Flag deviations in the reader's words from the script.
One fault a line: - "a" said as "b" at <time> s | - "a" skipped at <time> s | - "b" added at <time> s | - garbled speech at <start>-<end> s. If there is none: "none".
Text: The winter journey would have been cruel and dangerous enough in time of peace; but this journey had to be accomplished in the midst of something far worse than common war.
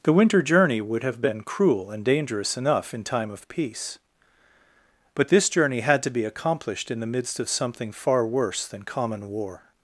none